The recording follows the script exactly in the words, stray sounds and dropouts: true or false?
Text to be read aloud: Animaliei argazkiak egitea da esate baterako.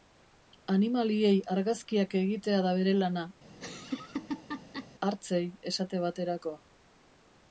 false